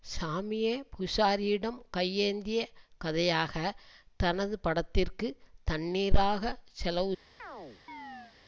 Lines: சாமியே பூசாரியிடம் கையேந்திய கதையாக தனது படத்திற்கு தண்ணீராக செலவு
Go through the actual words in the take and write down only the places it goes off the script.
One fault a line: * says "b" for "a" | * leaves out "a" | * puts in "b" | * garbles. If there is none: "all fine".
all fine